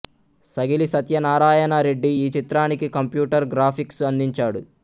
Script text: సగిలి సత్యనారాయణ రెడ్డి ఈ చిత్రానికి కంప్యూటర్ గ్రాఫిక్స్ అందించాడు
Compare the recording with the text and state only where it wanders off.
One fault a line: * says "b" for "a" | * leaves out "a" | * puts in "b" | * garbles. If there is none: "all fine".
all fine